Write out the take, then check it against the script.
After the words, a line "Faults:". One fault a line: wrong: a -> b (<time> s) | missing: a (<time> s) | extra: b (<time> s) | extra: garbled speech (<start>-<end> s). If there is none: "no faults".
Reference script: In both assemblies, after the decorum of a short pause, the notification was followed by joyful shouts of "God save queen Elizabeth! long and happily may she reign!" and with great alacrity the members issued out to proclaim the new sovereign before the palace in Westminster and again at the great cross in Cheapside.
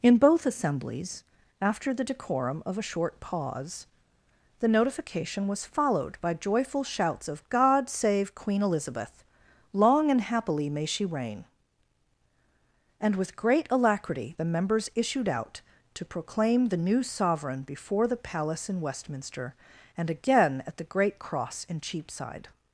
In both assemblies, after the decorum of a short pause, the notification was followed by joyful shouts of "God save queen Elizabeth! long and happily may she reign!" and with great alacrity the members issued out to proclaim the new sovereign before the palace in Westminster and again at the great cross in Cheapside.
Faults:
no faults